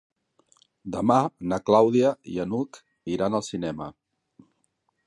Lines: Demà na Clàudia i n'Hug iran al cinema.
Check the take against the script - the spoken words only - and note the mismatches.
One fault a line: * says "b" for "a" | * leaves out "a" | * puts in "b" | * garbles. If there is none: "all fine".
all fine